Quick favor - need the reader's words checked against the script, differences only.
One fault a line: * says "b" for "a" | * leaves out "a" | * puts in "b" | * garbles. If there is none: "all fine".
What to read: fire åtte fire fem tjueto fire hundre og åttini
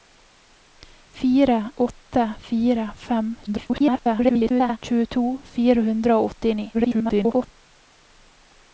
* garbles
* garbles